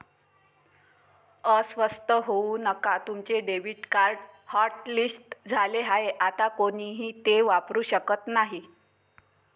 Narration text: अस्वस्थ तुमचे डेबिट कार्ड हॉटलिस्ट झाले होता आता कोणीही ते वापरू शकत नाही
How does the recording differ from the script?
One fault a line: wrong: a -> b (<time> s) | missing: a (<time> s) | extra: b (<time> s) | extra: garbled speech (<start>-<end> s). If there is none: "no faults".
extra: होऊ नका (2.3 s)
wrong: होता -> आहे (5.8 s)